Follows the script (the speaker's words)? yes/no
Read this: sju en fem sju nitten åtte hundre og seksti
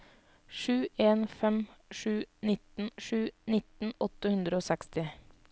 no